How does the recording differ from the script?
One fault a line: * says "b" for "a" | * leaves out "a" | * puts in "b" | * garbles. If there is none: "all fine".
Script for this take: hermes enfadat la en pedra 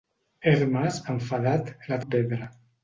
all fine